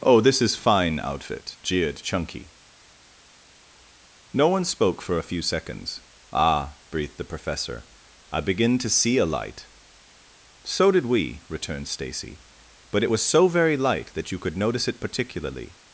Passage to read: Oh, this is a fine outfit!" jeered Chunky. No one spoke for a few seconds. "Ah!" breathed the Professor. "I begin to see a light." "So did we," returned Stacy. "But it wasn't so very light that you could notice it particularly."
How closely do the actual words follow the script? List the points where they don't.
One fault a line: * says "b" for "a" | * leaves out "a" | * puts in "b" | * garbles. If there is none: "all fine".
* leaves out "a"
* says "was" for "wasn't"